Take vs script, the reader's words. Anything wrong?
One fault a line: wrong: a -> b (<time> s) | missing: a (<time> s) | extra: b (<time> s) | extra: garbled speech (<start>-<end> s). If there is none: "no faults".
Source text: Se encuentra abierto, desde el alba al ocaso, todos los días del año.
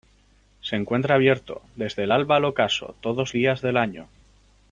missing: los (3.3 s)